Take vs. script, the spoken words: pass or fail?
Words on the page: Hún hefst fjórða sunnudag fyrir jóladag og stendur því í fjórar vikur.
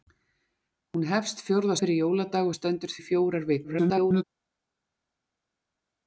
fail